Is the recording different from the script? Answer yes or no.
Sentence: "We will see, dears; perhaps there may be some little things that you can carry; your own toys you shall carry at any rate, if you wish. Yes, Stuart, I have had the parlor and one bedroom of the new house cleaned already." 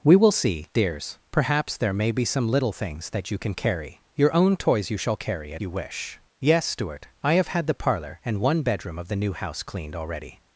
yes